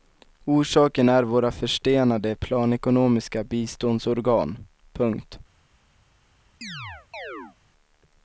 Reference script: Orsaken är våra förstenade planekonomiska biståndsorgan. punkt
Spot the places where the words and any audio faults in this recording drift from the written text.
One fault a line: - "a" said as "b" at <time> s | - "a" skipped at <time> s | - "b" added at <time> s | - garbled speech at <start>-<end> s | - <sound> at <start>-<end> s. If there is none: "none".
- chirp at 6.6-7.6 s